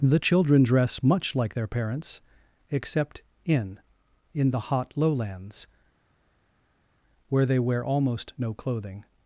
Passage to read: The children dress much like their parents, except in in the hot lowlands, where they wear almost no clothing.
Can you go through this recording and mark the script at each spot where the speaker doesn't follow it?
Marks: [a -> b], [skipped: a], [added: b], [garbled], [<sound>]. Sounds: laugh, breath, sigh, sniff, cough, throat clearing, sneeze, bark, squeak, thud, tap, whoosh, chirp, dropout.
The children dress much like their parents, except in in the hot lowlands, where they wear almost no clothing.